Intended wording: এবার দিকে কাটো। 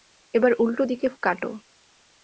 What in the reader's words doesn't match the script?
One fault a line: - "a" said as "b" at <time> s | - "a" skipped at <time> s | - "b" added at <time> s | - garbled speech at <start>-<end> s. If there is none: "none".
- "উল্টো" added at 0.6 s